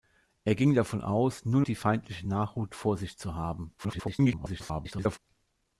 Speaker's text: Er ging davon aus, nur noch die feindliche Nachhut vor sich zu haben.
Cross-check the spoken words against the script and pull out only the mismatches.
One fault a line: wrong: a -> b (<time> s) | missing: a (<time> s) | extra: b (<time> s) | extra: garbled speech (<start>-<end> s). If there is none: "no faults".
missing: noch (1.6 s)
extra: garbled speech (3.8-5.2 s)